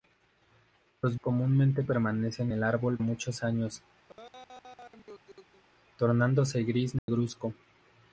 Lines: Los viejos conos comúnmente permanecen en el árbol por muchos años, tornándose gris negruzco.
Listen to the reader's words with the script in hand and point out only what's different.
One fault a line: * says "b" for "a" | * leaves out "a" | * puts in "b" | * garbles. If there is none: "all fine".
* leaves out "viejos conos"
* leaves out "en"
* leaves out "por"